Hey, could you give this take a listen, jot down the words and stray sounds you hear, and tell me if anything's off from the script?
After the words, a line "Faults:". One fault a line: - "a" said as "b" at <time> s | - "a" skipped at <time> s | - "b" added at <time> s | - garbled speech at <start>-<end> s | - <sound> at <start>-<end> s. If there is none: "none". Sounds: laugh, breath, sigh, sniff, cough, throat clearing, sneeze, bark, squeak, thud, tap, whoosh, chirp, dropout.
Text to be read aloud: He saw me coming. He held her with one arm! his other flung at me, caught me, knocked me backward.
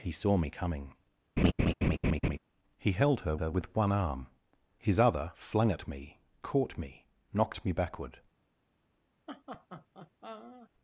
He saw me coming. He held her her with one arm! his other flung at me, caught me, knocked me backward.
Faults:
- laugh at 1.4-2.4 s
- "her" added at 3.3 s
- laugh at 9.3-10.7 s